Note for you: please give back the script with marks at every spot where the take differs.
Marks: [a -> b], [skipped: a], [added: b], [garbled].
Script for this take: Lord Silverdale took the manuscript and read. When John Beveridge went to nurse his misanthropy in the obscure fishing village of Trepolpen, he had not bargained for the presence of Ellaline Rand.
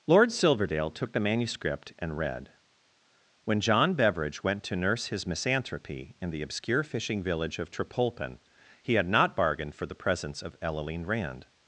Lord Silverdale took the manuscript and read. When John Beveridge went to nurse his misanthropy in the obscure fishing village of Trepolpen, he had not bargained for the presence of Ellaline Rand.